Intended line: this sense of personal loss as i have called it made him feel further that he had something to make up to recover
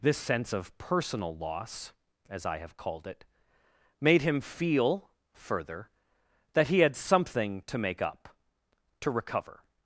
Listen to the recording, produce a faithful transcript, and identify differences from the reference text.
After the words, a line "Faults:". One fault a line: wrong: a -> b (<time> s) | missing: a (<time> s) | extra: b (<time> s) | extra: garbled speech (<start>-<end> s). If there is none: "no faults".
this sense of personal loss as i have called it made him feel further that he had something to make up to recover
Faults:
no faults